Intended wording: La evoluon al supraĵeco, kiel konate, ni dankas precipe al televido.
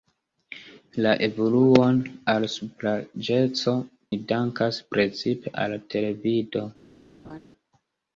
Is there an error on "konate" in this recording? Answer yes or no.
yes